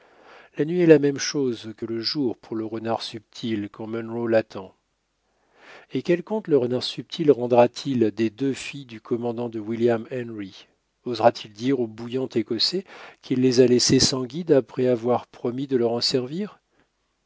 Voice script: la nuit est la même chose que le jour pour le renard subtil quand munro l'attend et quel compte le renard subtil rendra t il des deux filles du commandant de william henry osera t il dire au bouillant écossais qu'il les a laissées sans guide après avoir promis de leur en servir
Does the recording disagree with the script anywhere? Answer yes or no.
no